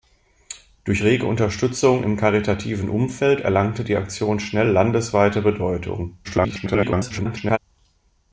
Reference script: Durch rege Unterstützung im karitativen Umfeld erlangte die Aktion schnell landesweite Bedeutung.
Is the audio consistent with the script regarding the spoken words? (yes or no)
no